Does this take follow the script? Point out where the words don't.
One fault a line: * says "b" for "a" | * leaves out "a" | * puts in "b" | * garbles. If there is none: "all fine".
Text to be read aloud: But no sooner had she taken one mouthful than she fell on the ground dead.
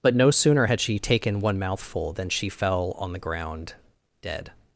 all fine